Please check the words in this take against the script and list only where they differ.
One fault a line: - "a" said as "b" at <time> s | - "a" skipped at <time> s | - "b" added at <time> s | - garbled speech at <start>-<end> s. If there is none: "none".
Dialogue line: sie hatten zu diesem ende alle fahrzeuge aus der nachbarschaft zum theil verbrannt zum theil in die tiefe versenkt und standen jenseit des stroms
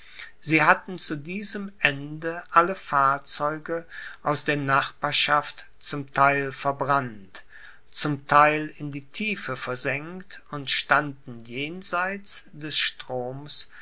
none